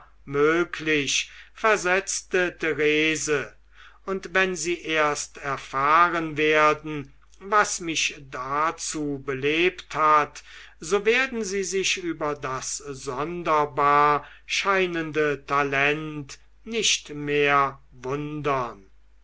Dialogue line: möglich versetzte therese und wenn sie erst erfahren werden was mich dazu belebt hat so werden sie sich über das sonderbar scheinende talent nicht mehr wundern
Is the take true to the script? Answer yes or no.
yes